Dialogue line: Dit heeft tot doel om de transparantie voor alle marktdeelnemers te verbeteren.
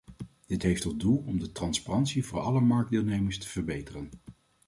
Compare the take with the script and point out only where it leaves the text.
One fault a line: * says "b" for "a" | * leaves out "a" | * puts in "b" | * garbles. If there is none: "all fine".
all fine